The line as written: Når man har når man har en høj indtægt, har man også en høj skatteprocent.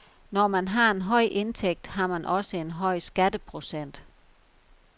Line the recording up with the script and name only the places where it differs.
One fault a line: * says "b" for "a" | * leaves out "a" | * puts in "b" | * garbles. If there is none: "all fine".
* leaves out "når man har"